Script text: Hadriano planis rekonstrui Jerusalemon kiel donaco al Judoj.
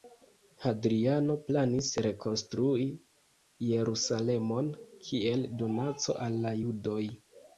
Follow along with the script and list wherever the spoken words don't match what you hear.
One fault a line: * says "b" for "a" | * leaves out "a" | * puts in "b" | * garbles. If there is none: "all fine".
* puts in "la"